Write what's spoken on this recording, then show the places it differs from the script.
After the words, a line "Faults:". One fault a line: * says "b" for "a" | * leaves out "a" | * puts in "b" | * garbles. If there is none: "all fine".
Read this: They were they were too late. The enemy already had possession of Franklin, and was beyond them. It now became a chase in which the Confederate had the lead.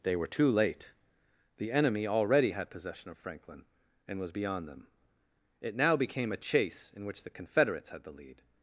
They were too late. The enemy already had possession of Franklin, and was beyond them. It now became a chase in which the Confederates had the lead.
Faults:
* leaves out "they were"
* says "Confederates" for "Confederate"